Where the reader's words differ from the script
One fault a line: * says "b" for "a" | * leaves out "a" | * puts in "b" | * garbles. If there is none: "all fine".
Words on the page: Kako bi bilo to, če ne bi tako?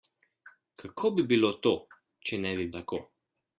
all fine